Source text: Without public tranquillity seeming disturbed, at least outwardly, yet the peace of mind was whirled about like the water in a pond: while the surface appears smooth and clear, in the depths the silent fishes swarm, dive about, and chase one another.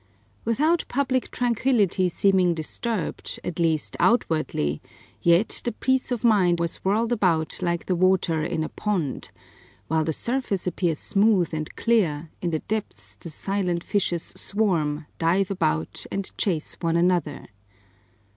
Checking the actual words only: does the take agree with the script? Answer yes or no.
yes